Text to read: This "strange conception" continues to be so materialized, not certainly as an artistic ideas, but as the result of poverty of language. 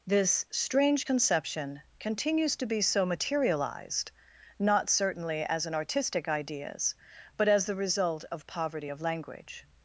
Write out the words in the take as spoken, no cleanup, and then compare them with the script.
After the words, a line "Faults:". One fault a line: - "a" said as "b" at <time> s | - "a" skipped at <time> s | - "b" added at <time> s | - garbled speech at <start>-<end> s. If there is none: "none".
This "strange conception" continues to be so materialized, not certainly as an artistic ideas, but as the result of poverty of language.
Faults:
none